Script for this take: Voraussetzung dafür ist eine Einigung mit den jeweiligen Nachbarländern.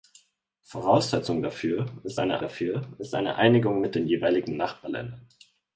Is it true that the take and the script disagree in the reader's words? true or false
true